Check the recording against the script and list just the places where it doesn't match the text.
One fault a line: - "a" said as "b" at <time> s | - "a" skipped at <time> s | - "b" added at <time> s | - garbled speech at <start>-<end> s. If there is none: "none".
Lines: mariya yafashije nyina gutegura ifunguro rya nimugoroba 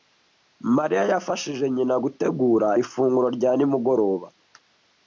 none